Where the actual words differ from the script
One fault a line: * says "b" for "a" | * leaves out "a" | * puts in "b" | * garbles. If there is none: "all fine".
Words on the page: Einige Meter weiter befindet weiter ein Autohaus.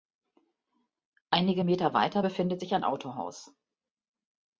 * says "sich" for "weiter"